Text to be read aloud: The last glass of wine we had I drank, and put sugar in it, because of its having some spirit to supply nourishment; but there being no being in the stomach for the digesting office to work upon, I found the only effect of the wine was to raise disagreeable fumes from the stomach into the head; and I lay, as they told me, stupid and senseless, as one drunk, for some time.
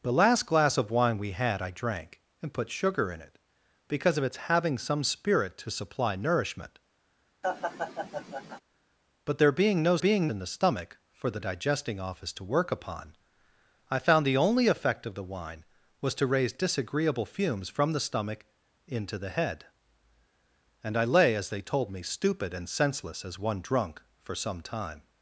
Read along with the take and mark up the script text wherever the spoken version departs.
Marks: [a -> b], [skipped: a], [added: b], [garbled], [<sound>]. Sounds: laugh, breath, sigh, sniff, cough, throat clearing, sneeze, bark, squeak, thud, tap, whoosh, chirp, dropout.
The last glass of wine we had I drank, and put sugar in it, because of its having some spirit to supply nourishment; [laugh] but there being no being in the stomach for the digesting office to work upon, I found the only effect of the wine was to raise disagreeable fumes from the stomach into the head; and I lay, as they told me, stupid and senseless, as one drunk, for some time.